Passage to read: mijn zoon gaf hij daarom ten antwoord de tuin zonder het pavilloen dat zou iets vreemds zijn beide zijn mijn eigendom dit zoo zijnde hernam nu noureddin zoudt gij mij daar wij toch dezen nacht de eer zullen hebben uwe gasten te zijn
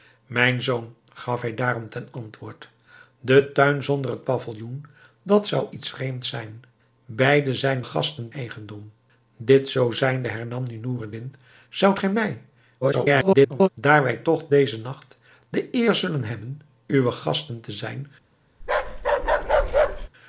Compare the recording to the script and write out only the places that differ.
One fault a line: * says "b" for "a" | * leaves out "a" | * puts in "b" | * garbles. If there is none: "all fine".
* says "gasten" for "mijn"
* garbles